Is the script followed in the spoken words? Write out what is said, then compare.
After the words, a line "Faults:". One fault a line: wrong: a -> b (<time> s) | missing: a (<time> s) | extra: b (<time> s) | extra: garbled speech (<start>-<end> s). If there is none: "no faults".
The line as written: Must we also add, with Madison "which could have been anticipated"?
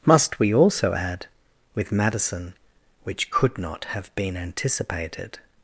Must we also add, with Madison "which could not have been anticipated"?
Faults:
extra: not (3.6 s)